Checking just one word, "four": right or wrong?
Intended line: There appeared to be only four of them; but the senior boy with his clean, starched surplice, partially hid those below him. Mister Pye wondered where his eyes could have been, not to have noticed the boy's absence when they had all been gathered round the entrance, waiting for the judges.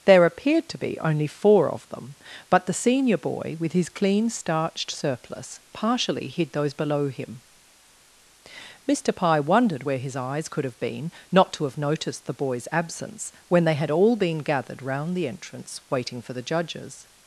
right